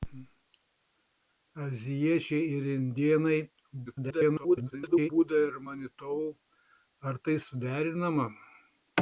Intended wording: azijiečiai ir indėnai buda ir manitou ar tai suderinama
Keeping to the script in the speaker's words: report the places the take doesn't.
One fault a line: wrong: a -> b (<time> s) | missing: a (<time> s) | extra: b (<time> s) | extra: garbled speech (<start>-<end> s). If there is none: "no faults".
extra: garbled speech (3.9-5.1 s)